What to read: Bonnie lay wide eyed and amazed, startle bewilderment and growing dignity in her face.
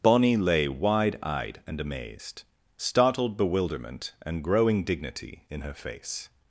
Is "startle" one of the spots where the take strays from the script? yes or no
yes